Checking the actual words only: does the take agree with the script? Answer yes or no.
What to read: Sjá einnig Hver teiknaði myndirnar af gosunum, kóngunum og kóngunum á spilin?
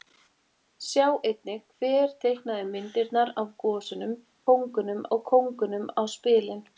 yes